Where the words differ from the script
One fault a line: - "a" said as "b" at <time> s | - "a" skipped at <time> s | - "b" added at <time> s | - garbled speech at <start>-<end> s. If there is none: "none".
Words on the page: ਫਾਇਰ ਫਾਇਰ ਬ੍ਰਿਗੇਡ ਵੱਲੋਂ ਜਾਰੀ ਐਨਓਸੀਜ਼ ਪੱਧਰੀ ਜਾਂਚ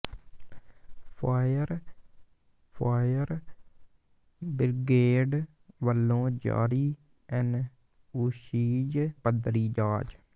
none